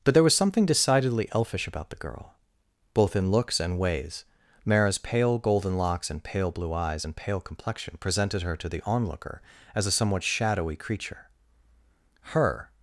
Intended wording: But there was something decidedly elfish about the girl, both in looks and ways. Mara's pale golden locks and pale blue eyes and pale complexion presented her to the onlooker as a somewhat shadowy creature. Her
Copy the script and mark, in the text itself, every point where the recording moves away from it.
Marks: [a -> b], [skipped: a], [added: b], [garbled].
But there was something decidedly elfish about the girl, both in looks and ways. Mara's pale golden locks and pale blue eyes and pale complexion presented her to the onlooker as a somewhat shadowy creature. Her